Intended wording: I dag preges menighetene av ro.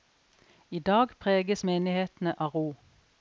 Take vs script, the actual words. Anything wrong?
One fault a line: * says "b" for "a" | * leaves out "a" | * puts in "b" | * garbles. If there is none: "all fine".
all fine